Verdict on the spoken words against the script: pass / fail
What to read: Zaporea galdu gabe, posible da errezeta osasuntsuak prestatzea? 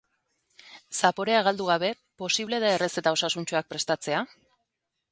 pass